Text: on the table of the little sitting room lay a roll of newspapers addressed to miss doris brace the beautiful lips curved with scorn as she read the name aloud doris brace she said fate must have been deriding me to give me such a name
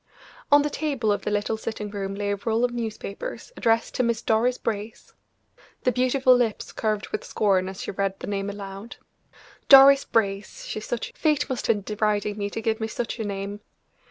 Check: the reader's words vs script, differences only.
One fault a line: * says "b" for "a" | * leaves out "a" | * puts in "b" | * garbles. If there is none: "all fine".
* says "such" for "said"
* leaves out "have"